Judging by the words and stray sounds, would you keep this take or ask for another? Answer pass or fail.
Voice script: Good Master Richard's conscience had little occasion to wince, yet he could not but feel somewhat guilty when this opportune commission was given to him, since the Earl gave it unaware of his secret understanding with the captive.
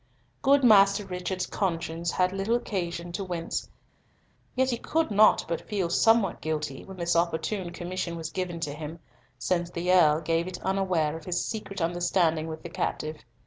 pass